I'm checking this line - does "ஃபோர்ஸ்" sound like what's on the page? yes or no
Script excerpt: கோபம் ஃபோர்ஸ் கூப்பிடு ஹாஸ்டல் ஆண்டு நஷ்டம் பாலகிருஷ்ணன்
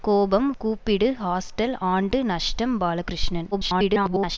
no